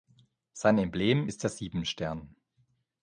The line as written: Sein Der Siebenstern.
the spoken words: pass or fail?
fail